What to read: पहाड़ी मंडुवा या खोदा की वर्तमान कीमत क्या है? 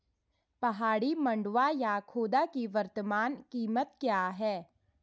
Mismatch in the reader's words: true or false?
false